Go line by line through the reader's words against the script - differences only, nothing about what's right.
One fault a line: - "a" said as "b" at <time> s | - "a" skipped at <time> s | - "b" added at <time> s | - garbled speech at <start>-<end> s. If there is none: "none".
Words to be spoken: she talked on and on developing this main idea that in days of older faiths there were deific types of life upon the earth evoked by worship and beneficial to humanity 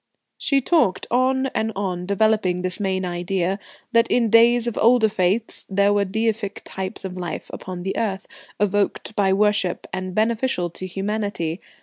none